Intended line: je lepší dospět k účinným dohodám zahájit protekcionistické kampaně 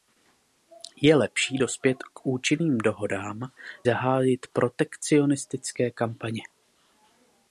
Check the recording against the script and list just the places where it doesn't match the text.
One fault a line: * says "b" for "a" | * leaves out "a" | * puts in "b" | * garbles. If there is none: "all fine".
all fine